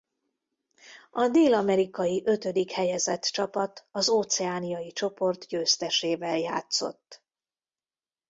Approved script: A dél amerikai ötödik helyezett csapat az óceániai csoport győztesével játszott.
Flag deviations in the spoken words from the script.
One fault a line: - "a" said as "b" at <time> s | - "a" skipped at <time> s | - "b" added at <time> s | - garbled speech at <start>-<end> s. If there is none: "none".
none